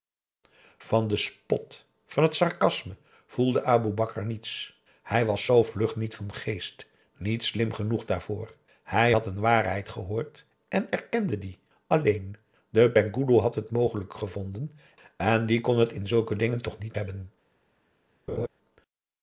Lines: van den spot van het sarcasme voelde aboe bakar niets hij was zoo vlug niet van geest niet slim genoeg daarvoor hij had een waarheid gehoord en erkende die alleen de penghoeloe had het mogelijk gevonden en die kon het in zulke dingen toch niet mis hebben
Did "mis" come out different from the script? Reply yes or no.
yes